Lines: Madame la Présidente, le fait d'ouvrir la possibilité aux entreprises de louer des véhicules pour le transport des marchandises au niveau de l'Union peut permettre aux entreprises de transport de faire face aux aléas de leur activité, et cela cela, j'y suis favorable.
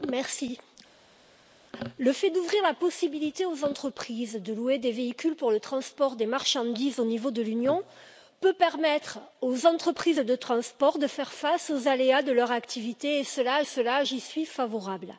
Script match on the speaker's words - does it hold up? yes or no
yes